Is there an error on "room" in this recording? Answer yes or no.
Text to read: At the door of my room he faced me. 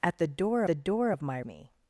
yes